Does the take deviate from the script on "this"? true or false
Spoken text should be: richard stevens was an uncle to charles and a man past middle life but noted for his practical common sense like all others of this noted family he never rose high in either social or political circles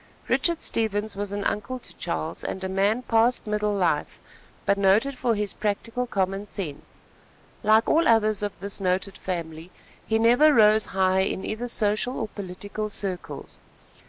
false